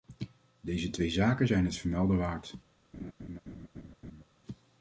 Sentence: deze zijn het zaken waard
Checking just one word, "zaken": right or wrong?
wrong